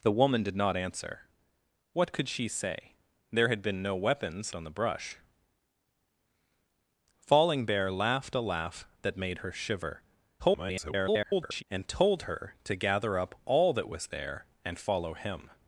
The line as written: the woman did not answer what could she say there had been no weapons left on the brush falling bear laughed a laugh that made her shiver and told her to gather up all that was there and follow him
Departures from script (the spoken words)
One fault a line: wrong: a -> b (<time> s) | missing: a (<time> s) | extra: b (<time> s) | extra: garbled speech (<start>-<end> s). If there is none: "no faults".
missing: left (4.5 s)
extra: garbled speech (10.4-11.6 s)